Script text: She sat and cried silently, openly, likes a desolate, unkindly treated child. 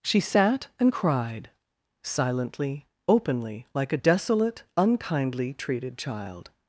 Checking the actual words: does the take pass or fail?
fail